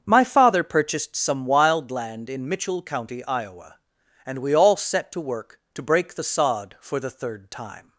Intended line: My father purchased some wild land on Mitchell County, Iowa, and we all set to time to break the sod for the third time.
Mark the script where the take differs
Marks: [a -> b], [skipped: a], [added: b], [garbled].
My father purchased some wild land [on -> in] Mitchell County, Iowa, and we all set to [time -> work] to break the sod for the third time.